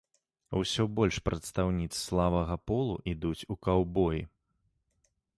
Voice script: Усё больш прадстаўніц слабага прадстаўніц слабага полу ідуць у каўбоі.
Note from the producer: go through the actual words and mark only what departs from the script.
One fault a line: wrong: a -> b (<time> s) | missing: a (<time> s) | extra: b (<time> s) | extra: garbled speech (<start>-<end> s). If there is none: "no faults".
missing: прадстаўніц слабага (2.5 s)